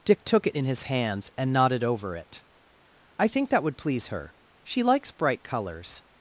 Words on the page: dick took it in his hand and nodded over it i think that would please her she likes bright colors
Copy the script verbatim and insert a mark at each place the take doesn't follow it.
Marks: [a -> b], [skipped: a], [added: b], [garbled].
dick took it in his [hand -> hands] and nodded over it i think that would please her she likes bright colors